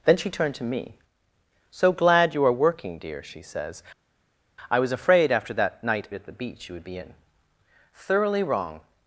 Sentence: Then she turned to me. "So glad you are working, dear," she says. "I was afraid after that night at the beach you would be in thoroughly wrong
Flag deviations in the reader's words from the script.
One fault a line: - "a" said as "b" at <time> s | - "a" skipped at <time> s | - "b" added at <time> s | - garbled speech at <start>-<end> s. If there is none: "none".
none